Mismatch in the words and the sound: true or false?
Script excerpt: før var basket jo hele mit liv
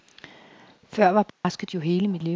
true